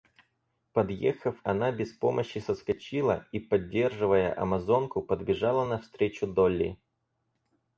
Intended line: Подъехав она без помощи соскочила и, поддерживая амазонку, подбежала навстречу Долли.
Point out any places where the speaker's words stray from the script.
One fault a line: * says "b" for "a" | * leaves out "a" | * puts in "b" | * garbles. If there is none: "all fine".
all fine